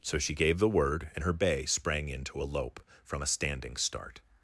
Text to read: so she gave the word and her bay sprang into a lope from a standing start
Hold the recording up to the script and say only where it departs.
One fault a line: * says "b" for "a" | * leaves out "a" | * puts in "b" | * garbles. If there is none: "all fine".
all fine